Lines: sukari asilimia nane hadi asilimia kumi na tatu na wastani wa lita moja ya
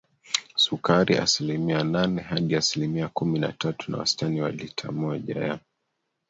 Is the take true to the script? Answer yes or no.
yes